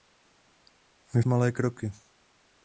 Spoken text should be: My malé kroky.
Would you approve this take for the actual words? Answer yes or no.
yes